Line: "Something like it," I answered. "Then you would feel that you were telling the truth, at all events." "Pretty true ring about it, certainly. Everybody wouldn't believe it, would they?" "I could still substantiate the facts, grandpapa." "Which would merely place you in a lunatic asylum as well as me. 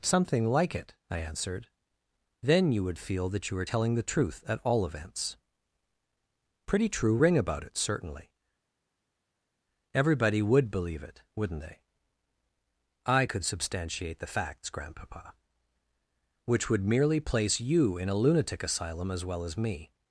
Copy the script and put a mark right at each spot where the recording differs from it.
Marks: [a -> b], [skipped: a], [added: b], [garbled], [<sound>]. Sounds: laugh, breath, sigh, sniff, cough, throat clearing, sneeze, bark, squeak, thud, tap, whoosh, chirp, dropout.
"Something like it," I answered. "Then you would feel that you were telling the truth, at all events." "Pretty true ring about it, certainly. Everybody [wouldn't -> would] believe it, [would -> wouldn't] they?" "I could [skipped: still] substantiate the facts, grandpapa." "Which would merely place you in a lunatic asylum as well as me.